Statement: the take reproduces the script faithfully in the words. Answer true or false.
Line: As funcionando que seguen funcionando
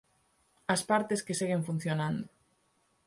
false